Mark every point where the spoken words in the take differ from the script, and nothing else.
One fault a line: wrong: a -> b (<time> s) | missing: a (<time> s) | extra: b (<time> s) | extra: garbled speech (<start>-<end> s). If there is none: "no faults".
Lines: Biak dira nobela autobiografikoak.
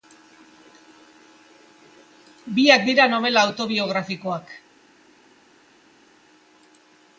no faults